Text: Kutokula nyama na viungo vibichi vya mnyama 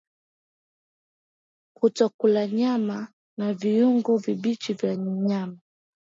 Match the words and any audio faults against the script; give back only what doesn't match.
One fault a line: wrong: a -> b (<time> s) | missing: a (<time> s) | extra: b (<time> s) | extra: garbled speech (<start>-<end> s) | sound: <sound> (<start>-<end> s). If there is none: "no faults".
no faults